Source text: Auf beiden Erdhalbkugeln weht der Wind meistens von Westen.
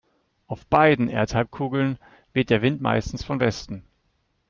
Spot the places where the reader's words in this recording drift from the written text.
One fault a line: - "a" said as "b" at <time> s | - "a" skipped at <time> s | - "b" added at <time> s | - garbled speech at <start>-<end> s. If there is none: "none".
none